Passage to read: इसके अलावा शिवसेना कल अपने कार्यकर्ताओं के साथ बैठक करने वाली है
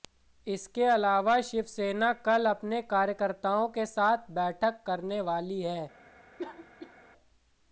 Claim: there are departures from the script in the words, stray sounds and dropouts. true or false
true